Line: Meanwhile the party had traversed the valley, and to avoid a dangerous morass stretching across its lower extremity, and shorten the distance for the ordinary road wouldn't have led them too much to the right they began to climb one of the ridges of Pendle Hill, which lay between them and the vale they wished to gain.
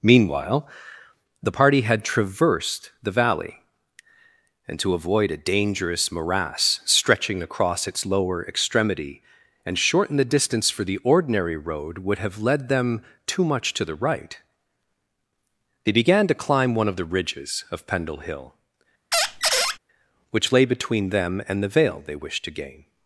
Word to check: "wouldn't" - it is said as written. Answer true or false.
false